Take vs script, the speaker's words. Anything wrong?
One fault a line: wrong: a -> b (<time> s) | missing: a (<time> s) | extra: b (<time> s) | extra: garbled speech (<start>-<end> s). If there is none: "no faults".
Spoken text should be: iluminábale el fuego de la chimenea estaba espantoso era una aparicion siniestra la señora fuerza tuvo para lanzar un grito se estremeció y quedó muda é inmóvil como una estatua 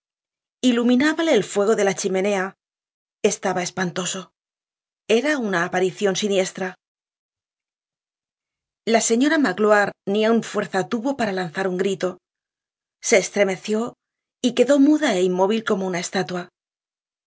extra: magloire ni aun (9.5 s)